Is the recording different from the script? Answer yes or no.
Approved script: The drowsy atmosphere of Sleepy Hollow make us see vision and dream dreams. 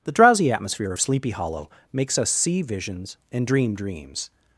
yes